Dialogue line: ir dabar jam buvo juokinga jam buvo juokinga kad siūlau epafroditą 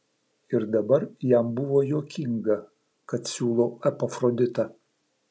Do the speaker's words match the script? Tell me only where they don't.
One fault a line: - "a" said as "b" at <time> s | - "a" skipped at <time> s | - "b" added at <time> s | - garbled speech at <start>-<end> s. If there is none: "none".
- "jam buvo juokinga" skipped at 2.6 s